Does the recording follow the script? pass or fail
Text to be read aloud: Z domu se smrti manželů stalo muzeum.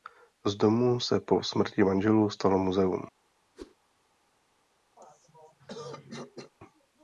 fail